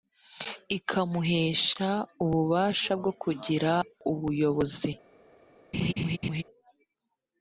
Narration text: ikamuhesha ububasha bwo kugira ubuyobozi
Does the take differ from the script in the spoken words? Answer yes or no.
no